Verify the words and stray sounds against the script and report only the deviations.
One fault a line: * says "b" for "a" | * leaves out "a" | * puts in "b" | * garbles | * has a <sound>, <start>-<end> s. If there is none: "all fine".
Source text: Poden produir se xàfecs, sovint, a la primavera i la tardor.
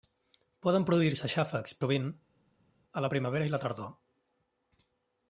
all fine